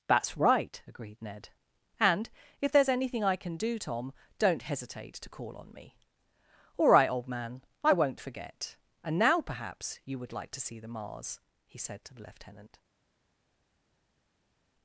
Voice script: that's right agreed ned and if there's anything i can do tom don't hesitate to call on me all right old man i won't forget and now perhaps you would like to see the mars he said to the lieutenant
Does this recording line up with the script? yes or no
yes